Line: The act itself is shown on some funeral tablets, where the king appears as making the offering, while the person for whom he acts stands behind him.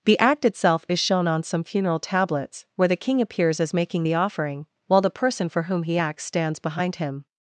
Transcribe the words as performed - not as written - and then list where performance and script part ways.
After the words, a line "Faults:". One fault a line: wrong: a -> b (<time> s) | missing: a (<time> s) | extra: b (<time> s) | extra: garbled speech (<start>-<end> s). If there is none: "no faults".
The act itself is shown on some funeral tablets, where the king appears as making the offering, while the person for whom he acts stands behind him.
Faults:
no faults